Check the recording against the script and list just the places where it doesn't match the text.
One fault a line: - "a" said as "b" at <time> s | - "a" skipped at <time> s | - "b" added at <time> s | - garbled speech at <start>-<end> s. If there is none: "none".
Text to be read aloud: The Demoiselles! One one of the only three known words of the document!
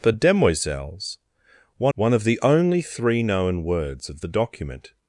none